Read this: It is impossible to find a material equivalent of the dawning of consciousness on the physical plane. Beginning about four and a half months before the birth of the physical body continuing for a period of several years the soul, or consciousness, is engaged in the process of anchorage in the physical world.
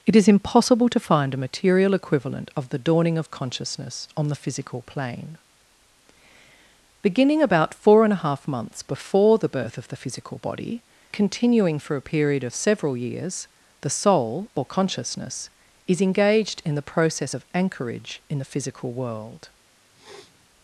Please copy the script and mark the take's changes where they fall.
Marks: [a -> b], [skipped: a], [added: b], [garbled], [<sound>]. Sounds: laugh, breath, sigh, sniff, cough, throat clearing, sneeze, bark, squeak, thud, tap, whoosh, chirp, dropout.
It is impossible to find a material equivalent of the dawning of consciousness on the physical plane. Beginning about four and a half months before the birth of the physical body continuing for a period of several years the soul, or consciousness, is engaged in the process of anchorage in the physical world. [sniff]